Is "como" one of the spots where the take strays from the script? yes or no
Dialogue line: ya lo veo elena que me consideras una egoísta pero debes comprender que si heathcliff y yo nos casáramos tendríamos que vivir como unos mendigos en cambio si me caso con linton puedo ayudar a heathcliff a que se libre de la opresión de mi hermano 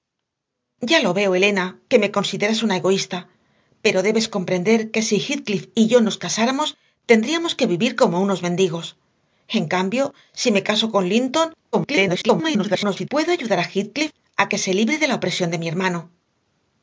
no